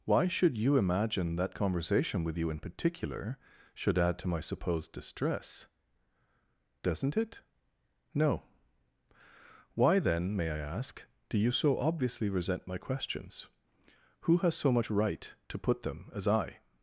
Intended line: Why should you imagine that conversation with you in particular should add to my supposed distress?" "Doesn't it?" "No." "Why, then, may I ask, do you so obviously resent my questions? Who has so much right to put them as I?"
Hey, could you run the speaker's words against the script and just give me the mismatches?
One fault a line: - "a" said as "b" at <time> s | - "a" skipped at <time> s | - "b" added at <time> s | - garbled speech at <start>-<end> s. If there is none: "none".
none